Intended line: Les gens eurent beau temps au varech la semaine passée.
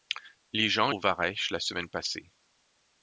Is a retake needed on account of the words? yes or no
yes